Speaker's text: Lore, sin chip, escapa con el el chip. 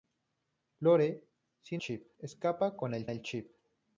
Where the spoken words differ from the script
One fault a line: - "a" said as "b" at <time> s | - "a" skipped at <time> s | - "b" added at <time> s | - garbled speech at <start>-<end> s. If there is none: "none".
none